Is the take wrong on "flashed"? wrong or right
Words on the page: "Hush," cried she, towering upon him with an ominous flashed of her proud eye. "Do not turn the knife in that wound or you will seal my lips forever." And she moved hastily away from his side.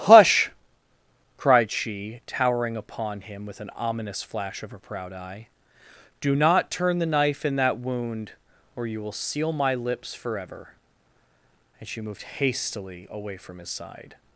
wrong